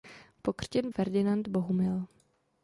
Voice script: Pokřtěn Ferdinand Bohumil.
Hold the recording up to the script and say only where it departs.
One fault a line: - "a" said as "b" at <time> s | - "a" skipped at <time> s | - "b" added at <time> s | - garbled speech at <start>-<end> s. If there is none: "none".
none